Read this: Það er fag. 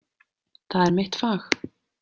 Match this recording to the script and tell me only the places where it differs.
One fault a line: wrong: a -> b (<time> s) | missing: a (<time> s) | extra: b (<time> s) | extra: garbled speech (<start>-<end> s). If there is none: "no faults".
extra: mitt (1.0 s)